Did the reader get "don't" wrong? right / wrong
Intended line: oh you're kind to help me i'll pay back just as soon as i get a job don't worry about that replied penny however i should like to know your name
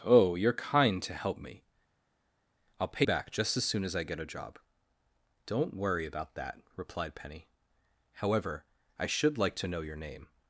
right